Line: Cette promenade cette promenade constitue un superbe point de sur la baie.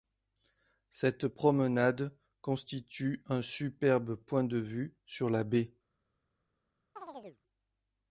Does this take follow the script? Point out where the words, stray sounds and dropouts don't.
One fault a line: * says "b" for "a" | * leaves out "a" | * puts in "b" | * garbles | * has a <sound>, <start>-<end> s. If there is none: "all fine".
* leaves out "cette promenade"
* puts in "vue"
* has a chirp, 7.0-7.4 s